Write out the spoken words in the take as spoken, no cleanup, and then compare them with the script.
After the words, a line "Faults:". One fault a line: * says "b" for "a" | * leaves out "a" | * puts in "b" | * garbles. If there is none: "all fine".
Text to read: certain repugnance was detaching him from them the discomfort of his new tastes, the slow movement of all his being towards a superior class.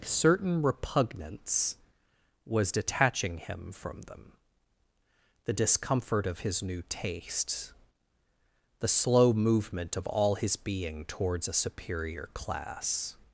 certain repugnance was detaching him from them the discomfort of his new tastes, the slow movement of all his being towards a superior class.
Faults:
all fine